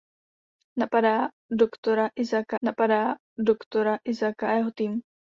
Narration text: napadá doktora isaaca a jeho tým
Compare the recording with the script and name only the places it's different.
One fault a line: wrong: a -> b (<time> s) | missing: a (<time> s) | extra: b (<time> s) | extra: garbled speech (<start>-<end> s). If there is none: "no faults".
extra: napadá doktora isaaca (2.6 s)